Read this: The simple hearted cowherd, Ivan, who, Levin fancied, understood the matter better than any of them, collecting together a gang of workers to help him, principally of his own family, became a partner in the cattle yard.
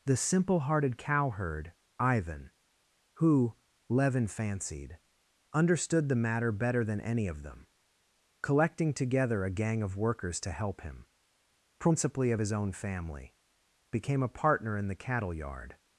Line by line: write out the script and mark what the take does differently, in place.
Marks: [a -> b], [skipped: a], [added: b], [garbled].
The simple hearted cowherd, Ivan, who, Levin fancied, understood the matter better than any of them, collecting together a gang of workers to help him, principally of his own family, became a partner in the cattle yard.